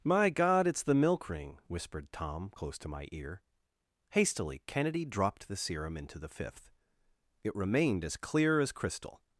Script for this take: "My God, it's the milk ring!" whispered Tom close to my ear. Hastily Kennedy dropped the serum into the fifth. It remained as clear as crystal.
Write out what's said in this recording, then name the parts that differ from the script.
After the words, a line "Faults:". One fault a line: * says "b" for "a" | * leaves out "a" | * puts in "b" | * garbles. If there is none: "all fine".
"My God, it's the milk ring!" whispered Tom close to my ear. Hastily Kennedy dropped the serum into the fifth. It remained as clear as crystal.
Faults:
all fine